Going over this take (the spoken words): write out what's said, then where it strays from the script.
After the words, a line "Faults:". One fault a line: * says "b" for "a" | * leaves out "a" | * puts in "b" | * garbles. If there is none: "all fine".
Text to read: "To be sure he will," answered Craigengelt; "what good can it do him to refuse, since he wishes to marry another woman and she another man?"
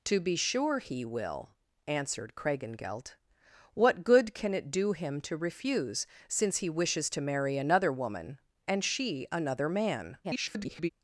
"To be sure he will," answered Craigengelt; "what good can it do him to refuse, since he wishes to marry another woman and she another man?" [garbled]
Faults:
* garbles